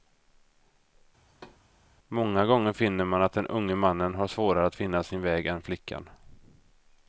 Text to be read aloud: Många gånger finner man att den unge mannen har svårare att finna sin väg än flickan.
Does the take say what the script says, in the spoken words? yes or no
yes